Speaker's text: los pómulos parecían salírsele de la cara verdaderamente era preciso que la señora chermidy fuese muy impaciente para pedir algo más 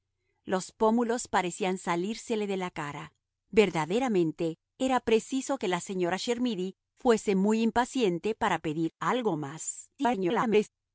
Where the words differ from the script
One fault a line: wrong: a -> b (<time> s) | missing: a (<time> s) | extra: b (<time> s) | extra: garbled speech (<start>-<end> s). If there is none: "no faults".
extra: garbled speech (10.0-10.7 s)